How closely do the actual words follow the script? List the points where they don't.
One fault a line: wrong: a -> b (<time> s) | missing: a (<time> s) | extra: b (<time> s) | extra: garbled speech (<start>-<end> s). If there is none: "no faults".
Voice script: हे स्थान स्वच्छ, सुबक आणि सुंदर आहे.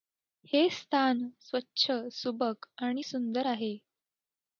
no faults